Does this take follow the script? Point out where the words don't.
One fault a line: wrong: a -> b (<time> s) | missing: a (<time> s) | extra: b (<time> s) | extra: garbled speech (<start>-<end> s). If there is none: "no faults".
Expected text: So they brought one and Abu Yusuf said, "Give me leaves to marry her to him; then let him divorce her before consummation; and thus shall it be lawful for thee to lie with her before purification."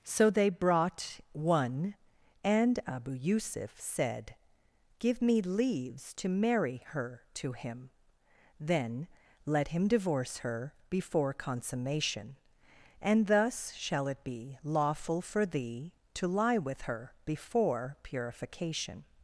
no faults